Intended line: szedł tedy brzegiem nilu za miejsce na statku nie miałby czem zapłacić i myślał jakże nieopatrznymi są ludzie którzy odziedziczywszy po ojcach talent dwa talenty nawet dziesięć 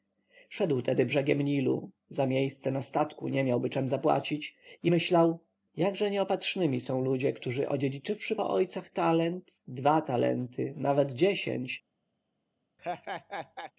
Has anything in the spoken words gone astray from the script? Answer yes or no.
no